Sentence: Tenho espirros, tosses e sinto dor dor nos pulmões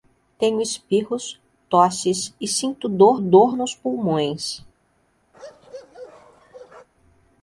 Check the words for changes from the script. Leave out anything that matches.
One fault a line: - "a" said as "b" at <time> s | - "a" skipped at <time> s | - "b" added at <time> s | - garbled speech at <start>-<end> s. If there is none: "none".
none